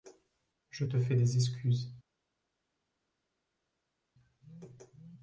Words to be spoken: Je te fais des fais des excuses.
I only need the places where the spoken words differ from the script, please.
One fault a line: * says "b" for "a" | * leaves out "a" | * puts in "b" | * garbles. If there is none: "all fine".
* leaves out "fais des"